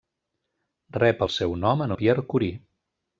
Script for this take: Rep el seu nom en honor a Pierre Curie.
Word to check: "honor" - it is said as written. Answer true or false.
false